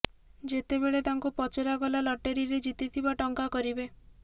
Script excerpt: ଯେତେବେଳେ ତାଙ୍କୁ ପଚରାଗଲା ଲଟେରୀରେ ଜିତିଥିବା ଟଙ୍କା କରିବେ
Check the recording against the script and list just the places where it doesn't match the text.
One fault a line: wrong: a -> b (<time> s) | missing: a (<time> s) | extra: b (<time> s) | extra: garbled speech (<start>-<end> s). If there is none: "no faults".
no faults